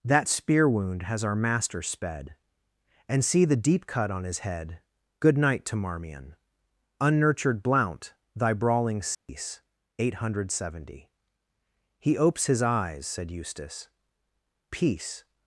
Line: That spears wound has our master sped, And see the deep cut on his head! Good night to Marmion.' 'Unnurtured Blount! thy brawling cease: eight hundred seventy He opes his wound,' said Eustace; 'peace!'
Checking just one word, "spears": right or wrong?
wrong